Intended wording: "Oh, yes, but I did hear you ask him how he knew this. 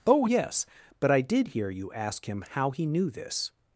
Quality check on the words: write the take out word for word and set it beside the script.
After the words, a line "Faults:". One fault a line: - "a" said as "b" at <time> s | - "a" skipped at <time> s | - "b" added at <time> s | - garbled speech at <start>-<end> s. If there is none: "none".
"Oh, yes, but I did hear you ask him how he knew this.
Faults:
none